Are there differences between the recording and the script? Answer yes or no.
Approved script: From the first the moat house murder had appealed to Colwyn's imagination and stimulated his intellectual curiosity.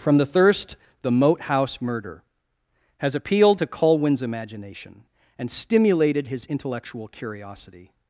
yes